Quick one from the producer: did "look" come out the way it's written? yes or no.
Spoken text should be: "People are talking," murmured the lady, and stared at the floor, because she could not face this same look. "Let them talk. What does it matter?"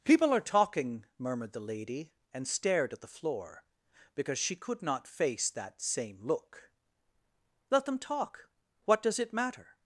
yes